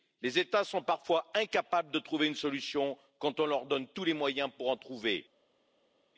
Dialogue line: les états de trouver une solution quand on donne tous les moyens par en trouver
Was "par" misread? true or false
true